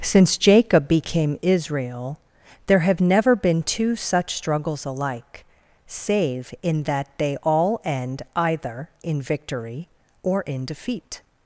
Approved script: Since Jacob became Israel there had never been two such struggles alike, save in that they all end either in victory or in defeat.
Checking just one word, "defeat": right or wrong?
right